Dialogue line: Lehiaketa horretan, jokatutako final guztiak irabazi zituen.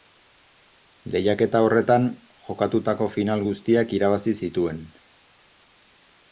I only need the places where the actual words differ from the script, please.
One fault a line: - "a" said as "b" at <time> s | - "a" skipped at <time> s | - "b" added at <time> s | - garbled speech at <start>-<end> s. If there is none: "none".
none